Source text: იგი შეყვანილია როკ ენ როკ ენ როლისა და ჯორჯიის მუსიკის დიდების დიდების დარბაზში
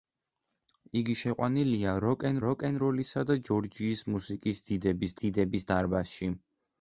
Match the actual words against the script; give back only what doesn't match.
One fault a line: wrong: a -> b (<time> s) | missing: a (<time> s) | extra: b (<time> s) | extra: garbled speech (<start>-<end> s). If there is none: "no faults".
no faults